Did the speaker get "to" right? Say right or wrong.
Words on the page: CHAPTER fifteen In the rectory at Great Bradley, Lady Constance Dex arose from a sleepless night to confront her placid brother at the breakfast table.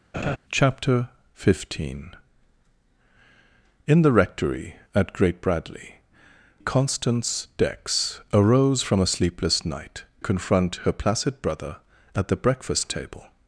wrong